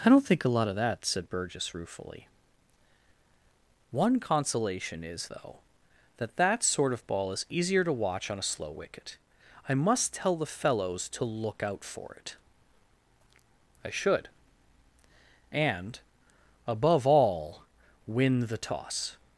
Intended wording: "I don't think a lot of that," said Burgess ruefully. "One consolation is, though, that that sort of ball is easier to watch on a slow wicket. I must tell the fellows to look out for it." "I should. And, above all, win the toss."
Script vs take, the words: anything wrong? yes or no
no